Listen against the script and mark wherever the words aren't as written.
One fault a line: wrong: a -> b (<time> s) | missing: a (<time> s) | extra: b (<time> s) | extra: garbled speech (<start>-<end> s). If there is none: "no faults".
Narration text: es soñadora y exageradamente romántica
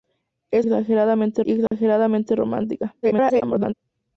wrong: soñadora -> exageradamente (0.6 s)
extra: garbled speech (3.0-3.7 s)